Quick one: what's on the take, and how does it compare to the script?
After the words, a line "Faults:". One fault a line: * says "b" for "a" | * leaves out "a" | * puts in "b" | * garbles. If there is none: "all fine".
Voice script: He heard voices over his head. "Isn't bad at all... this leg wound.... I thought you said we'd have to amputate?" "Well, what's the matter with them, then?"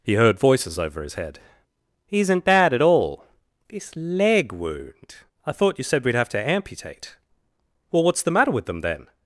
He heard voices over his head. "Isn't bad at all... this leg wound.... I thought you said we'd have to amputate?" "Well, what's the matter with them, then?"
Faults:
all fine